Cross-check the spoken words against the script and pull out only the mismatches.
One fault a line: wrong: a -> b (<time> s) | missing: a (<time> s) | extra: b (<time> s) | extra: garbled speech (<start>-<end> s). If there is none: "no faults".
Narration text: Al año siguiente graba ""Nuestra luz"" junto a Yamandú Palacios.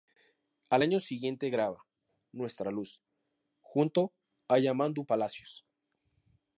no faults